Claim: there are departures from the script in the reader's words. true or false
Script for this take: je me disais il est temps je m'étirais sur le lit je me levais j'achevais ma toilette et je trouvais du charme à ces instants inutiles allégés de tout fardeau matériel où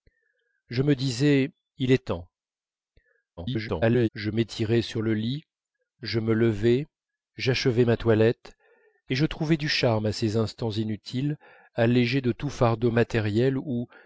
true